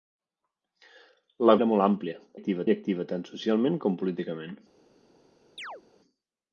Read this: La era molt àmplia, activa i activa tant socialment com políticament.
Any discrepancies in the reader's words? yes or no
no